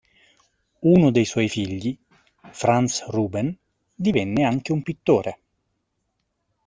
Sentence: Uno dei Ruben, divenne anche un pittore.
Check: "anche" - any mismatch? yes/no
no